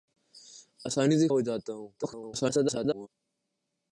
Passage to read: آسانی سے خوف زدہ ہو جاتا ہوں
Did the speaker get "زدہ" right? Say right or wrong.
wrong